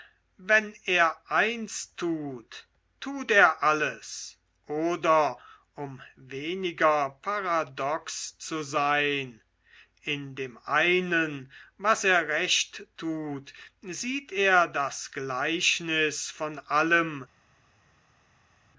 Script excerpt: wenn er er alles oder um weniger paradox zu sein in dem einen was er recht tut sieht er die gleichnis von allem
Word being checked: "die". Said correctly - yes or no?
no